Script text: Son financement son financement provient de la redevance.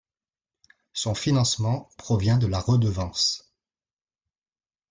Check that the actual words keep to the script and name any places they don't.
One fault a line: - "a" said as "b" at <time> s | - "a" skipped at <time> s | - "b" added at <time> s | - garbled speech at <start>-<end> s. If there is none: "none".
- "son financement" skipped at 1.9 s